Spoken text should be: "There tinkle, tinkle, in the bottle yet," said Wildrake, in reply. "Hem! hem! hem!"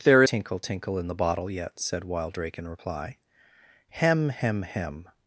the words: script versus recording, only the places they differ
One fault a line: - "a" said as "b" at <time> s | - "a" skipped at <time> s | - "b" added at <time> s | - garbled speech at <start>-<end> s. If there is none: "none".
none